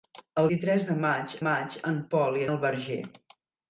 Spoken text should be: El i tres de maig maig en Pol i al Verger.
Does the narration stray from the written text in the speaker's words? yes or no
no